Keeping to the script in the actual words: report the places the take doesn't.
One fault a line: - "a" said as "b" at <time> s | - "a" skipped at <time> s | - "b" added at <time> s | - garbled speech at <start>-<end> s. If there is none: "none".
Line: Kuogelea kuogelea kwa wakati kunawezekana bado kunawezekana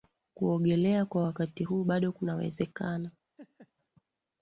- "kuogelea" skipped at 1.1 s
- "kunawezekana" said as "huu" at 1.6 s